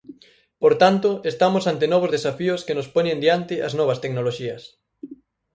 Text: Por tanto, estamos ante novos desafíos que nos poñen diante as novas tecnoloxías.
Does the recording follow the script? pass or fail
pass